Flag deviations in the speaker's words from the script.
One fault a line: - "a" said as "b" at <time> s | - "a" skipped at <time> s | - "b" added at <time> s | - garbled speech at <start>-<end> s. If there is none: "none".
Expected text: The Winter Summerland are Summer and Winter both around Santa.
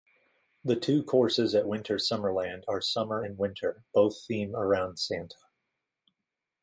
- "two courses at" added at 0.8 s
- "theme" added at 4.3 s